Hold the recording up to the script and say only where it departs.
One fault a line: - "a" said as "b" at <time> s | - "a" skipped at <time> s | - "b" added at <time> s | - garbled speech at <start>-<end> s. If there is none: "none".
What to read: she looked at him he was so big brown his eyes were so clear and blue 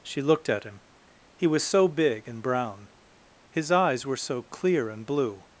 - "and" added at 2.3 s